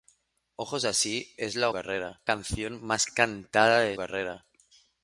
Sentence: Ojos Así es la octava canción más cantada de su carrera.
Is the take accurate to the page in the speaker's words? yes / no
no